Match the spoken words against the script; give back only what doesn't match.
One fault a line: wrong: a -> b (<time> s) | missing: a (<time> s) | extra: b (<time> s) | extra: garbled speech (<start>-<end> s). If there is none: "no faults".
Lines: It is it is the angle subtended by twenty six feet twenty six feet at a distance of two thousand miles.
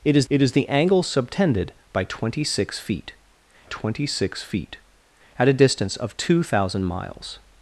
no faults